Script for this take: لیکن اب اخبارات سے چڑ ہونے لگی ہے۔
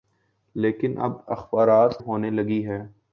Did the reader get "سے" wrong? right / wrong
wrong